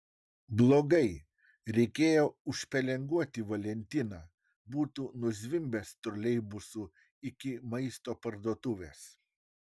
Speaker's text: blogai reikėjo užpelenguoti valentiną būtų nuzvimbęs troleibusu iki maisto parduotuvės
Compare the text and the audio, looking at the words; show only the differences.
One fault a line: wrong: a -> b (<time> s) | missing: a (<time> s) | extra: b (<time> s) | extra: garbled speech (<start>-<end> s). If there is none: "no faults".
no faults